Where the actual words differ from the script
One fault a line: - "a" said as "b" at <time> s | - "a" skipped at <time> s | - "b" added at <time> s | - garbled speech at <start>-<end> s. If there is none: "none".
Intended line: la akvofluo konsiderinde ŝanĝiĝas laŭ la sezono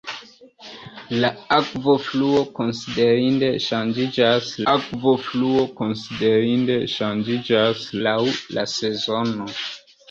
- "akvofluo konsiderinde ŝanĝiĝas" added at 4.7 s